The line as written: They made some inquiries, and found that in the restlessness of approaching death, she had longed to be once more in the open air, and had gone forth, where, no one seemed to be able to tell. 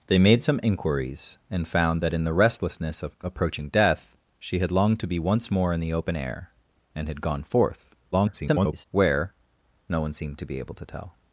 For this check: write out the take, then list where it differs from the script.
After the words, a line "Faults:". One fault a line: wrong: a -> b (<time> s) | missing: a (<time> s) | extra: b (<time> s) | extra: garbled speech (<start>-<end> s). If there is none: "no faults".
They made some inquiries, and found that in the restlessness of approaching death, she had longed to be once more in the open air, and had gone forth, [garbled] where, no one seemed to be able to tell.
Faults:
extra: garbled speech (8.1-8.9 s)